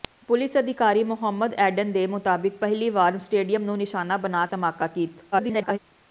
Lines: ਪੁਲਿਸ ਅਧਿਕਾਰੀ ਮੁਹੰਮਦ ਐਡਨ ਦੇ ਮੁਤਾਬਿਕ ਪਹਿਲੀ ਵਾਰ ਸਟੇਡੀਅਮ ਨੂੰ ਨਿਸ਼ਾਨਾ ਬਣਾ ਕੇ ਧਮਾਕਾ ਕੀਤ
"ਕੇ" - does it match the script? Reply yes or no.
no